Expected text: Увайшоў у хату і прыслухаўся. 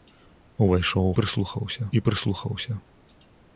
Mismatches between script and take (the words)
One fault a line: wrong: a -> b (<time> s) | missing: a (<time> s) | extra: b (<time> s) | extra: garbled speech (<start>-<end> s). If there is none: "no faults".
wrong: хату -> прыслухаўся (1.2 s)